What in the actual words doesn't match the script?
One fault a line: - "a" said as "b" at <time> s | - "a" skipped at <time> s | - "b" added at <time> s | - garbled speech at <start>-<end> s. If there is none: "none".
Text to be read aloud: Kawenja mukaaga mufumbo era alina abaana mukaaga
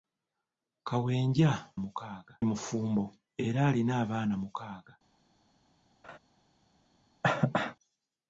none